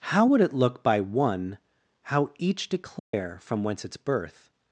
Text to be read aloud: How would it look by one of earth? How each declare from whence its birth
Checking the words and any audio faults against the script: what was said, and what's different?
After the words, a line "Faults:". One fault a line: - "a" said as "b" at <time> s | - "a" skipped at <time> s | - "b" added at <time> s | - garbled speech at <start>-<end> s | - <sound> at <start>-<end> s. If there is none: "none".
How would it look by one? How each declare from whence its birth
Faults:
- "of earth" skipped at 1.6 s
- dropout at 3.0-3.1 s